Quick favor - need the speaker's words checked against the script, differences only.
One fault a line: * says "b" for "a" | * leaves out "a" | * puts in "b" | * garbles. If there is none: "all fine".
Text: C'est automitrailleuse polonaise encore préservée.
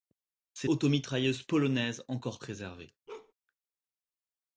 all fine